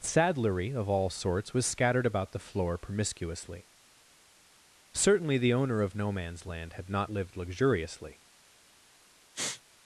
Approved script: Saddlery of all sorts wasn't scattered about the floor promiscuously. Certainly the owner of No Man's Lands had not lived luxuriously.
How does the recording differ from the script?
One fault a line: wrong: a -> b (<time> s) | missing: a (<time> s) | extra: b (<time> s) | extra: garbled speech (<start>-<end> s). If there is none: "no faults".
wrong: wasn't -> was (1.5 s)
wrong: Lands -> Land (6.5 s)